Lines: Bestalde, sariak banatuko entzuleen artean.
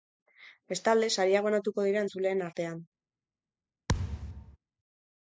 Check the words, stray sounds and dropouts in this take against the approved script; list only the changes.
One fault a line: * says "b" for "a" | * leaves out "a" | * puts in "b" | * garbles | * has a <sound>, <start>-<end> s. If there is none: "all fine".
* puts in "dira"
* has a thud, 3.9-4.6 s